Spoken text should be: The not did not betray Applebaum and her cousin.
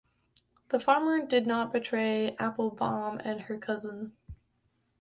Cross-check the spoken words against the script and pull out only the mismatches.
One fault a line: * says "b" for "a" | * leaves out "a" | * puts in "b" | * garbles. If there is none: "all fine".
* says "farmer" for "not"